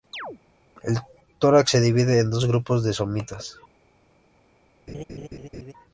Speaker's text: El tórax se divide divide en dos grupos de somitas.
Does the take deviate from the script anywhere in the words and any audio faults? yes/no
yes